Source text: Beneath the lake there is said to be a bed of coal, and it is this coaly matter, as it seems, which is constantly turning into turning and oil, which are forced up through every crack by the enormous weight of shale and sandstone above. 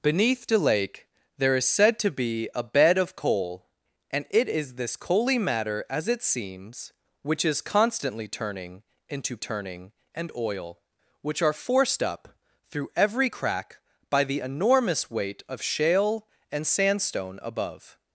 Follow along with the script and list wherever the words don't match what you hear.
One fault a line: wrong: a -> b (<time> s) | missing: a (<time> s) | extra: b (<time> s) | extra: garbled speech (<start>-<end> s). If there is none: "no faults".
no faults